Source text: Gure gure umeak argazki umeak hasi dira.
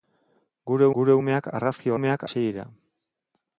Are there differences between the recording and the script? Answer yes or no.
no